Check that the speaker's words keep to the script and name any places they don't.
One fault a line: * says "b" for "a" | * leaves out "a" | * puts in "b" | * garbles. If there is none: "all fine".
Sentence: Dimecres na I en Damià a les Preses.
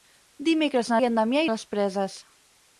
all fine